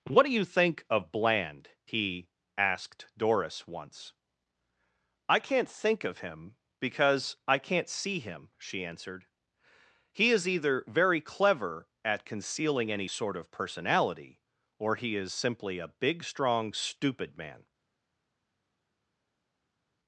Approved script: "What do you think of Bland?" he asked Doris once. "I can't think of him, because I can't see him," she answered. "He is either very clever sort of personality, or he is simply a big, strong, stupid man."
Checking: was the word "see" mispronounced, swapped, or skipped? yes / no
no